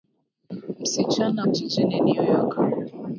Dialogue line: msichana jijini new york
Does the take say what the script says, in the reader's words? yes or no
yes